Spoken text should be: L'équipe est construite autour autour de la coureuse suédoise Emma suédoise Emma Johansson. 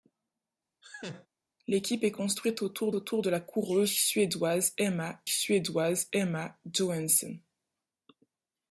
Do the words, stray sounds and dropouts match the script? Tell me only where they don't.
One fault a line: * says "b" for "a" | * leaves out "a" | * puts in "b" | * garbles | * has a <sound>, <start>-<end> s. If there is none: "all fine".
* has a laugh, 0.8-1.3 s